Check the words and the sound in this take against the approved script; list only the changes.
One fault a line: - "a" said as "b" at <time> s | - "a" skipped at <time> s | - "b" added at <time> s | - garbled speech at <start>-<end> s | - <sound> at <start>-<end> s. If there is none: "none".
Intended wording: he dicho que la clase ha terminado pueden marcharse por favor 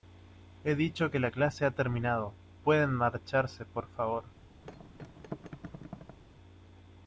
- thud at 4.6-6.2 s